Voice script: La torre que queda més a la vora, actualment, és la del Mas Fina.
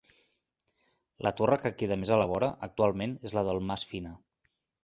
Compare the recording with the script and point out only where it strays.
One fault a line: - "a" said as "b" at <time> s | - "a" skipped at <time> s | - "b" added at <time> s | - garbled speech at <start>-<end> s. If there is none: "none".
none